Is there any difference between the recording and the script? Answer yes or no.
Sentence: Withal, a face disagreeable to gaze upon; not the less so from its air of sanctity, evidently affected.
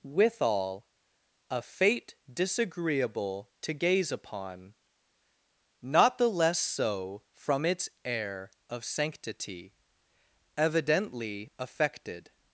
yes